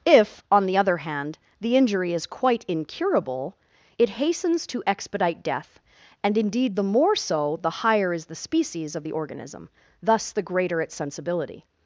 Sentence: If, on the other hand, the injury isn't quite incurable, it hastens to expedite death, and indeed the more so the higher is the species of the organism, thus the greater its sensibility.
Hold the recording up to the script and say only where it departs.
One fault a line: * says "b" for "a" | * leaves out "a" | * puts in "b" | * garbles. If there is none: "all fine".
* says "is" for "isn't"